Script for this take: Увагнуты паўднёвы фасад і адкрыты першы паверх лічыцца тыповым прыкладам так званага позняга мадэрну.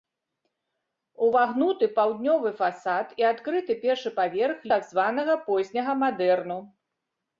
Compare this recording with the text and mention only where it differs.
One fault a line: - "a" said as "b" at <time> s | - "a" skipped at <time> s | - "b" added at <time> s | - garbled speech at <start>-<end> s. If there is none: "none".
- "лічыцца тыповым прыкладам" skipped at 4.7 s